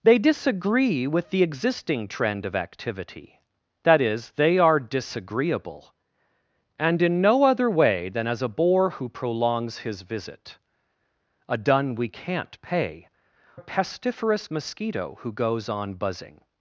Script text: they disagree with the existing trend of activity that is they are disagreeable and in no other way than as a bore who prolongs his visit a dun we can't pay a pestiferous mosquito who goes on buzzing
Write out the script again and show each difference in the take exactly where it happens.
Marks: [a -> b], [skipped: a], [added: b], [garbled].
they disagree with the existing trend of activity that is they are disagreeable and in no other way than as a bore who prolongs his visit a dun we can't pay a pestiferous mosquito who goes on buzzing